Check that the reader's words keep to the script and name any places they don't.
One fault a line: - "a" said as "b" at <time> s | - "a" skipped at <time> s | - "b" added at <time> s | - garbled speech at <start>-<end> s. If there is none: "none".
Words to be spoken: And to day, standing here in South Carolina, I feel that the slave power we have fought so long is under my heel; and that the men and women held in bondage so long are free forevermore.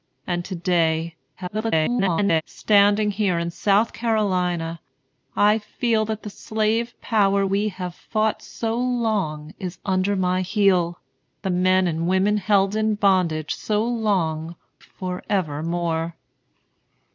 - garbled speech at 1.4-2.4 s
- "and that" skipped at 11.0 s
- "are free" skipped at 14.5 s